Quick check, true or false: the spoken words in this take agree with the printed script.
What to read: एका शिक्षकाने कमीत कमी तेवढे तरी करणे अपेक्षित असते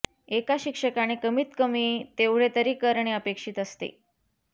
true